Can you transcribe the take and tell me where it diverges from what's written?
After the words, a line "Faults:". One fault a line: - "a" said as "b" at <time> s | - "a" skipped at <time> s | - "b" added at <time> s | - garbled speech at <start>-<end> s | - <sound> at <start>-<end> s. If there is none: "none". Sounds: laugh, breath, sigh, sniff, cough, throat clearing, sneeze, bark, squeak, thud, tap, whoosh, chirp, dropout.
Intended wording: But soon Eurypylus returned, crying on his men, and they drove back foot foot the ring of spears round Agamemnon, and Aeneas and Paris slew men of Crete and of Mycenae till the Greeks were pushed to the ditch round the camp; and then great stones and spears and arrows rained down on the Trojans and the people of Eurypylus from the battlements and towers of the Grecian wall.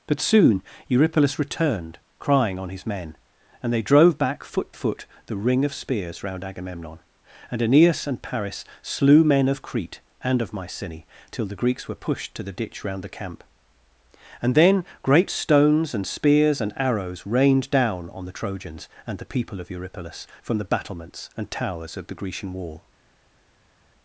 But soon Eurypylus returned, crying on his men, and they drove back foot foot the ring of spears round Agamemnon, and Aeneas and Paris slew men of Crete and of Mycenae till the Greeks were pushed to the ditch round the camp; and then great stones and spears and arrows rained down on the Trojans and the people of Eurypylus from the battlements and towers of the Grecian wall.
Faults:
none